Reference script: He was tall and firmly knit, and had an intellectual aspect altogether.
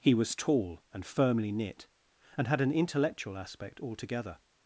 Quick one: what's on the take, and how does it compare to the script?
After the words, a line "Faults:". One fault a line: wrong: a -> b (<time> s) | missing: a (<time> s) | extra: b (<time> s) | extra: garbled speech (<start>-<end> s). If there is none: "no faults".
He was tall and firmly knit, and had an intellectual aspect altogether.
Faults:
no faults